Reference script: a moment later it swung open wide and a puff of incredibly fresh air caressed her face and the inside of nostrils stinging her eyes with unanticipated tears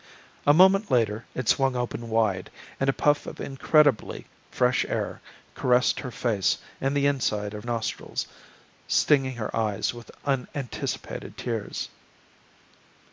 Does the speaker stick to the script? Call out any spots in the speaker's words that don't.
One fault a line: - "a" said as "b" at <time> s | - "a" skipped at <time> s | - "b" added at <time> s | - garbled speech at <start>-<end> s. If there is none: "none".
none